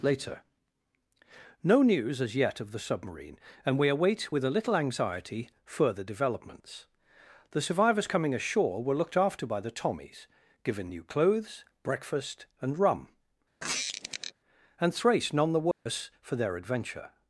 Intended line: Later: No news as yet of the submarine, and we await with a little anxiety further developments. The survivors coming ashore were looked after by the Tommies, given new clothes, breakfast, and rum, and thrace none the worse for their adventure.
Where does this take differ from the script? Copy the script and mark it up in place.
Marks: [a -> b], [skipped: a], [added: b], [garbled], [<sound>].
Later: No news as yet of the submarine, and we await with a little anxiety further developments. The survivors coming ashore were looked after by the Tommies, given new clothes, breakfast, and rum, [squeak] and thrace none the worse [dropout] for their adventure.